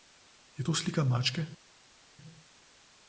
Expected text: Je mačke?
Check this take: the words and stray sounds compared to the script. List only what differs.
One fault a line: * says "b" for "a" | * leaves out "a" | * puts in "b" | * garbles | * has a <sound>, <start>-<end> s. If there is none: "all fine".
* puts in "to slika"